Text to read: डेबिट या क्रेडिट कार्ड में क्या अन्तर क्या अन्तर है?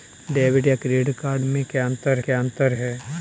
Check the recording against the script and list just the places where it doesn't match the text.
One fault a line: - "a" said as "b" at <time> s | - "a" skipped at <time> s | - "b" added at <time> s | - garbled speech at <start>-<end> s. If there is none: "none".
none